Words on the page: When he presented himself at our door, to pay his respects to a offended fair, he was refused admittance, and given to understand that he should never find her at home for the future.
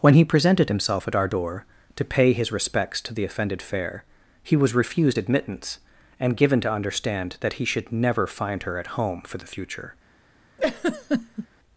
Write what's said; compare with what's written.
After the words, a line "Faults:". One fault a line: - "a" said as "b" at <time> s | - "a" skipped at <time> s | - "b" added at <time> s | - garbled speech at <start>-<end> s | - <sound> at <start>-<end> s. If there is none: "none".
When he presented himself at our door, to pay his respects to the offended fair, he was refused admittance, and given to understand that he should never find her at home for the future.
Faults:
- "a" said as "the" at 3.1 s
- laugh at 10.6-11.5 s